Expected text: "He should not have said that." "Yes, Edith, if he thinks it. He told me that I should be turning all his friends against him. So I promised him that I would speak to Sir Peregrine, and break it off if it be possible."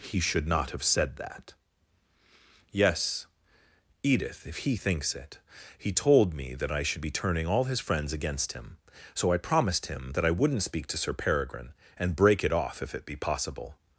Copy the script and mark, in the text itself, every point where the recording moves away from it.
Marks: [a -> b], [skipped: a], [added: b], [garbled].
"He should not have said that." "Yes, Edith, if he thinks it. He told me that I should be turning all his friends against him. So I promised him that I [would -> wouldn't] speak to Sir Peregrine, and break it off if it be possible."